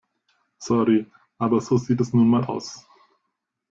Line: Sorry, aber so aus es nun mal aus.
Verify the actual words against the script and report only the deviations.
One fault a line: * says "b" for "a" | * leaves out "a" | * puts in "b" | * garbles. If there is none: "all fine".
* says "sieht" for "aus"